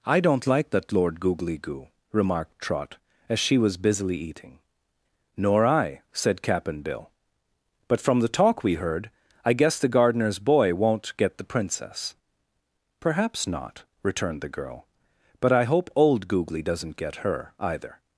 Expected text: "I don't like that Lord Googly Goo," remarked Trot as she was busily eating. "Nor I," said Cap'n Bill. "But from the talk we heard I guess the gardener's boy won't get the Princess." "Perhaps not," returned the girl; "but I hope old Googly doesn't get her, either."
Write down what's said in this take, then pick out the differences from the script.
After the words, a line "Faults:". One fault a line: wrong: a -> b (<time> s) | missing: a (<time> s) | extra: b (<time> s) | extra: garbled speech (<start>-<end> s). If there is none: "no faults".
"I don't like that Lord Googly Goo," remarked Trot as she was busily eating. "Nor I," said Cap'n Bill. "But from the talk we heard I guess the gardener's boy won't get the Princess." "Perhaps not," returned the girl; "but I hope old Googly doesn't get her, either."
Faults:
no faults